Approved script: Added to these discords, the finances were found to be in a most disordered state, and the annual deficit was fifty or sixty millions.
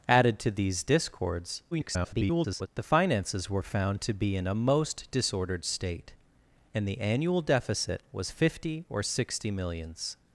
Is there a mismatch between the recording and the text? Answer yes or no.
yes